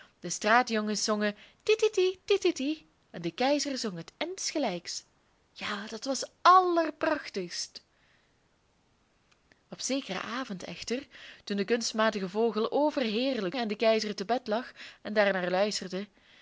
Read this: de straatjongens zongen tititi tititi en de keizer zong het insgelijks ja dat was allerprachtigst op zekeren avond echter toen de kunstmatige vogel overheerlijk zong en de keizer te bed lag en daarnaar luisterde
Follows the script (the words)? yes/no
no